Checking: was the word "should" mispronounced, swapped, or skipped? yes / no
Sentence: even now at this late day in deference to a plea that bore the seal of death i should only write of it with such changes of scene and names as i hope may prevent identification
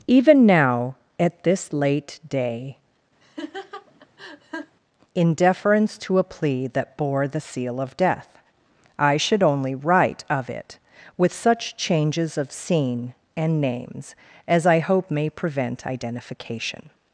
no